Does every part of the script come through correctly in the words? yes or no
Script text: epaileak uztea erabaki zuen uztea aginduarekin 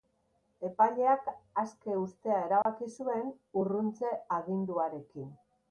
no